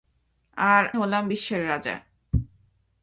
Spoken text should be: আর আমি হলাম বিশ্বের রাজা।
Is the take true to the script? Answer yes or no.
no